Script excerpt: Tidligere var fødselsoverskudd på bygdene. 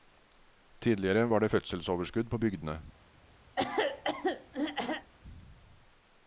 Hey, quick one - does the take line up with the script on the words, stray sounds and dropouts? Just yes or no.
no